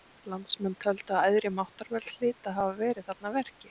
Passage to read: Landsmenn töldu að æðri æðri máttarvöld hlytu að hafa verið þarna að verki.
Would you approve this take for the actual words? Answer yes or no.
no